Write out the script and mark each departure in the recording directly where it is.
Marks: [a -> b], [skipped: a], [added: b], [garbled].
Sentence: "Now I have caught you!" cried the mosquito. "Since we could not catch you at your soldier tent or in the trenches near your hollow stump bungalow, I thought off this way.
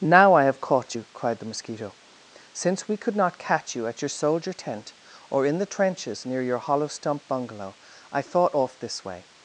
"Now I have caught you!" cried the mosquito. "Since we could not catch you at your soldier tent or in the trenches near your hollow stump bungalow, I thought off this way.